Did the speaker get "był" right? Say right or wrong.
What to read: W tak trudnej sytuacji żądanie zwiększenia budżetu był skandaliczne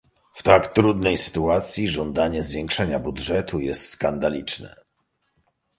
wrong